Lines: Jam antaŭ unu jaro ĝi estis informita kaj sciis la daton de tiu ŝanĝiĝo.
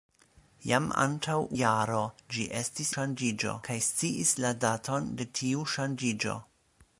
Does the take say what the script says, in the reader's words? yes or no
no